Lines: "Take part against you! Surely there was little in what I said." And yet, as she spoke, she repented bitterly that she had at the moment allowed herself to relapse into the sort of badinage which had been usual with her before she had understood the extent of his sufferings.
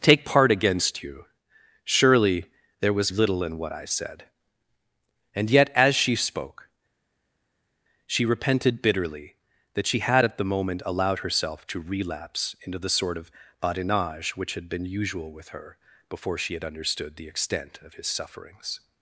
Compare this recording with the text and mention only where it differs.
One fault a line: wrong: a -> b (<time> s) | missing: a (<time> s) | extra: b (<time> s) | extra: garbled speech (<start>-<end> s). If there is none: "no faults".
no faults